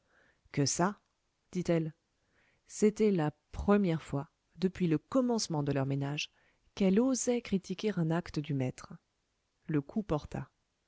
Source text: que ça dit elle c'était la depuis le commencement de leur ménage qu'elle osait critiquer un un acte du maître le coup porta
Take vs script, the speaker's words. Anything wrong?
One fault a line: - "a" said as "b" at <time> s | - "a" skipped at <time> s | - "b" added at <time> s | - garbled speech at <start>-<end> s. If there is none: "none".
- "première fois" added at 3.5 s
- "un" skipped at 8.1 s